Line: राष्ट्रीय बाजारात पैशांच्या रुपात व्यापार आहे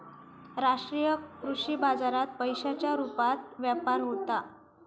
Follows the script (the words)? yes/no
no